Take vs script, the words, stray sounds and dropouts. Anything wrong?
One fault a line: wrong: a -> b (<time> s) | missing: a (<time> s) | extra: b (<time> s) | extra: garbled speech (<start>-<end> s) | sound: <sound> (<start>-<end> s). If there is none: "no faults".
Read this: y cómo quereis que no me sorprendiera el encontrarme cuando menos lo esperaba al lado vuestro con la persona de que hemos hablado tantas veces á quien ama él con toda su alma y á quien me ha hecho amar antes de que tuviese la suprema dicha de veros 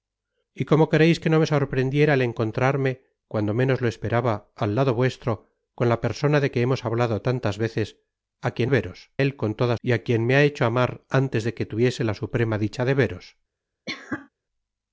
wrong: ama -> veros (8.7 s)
missing: su alma (9.7 s)
sound: cough (13.9-14.3 s)